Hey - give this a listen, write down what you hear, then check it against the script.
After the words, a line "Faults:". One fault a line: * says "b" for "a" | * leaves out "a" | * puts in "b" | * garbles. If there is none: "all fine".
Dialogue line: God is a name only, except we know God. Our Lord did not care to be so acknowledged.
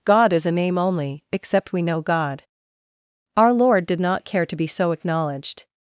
God is a name only, except we know God. Our Lord did not care to be so acknowledged.
Faults:
all fine